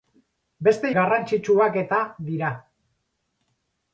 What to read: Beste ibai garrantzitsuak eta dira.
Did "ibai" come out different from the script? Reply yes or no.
yes